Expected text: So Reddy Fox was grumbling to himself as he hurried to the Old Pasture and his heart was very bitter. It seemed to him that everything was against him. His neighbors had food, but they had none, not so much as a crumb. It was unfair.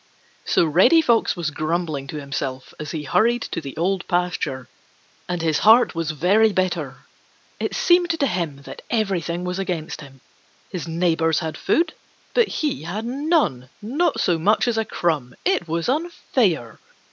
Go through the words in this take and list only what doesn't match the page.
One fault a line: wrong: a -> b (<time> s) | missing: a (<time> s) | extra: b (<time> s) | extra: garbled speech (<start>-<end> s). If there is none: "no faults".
wrong: they -> he (12.5 s)